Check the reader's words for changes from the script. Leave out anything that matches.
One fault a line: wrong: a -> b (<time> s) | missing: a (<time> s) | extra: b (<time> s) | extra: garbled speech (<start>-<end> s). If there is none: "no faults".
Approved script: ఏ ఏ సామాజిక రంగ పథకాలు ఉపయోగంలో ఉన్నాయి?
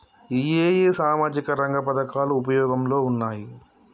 no faults